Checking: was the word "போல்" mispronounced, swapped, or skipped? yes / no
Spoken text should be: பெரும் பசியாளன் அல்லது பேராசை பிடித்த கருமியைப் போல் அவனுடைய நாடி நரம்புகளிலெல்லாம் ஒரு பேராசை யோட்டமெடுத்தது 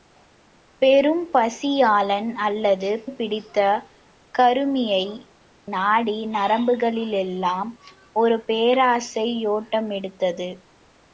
yes